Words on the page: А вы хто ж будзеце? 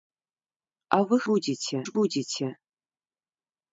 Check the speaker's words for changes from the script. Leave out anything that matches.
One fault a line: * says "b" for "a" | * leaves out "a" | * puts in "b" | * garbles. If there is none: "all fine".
* says "будзеце" for "хто"